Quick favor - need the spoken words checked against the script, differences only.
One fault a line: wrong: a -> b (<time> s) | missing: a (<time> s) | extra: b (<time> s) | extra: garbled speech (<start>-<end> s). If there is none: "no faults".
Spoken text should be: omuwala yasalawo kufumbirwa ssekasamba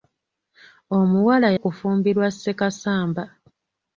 missing: yasalawo (1.5 s)